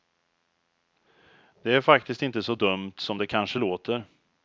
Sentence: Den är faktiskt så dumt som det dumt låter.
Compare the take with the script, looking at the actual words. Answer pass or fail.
fail